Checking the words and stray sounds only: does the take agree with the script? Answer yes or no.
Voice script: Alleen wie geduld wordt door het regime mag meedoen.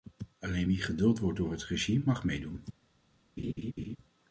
no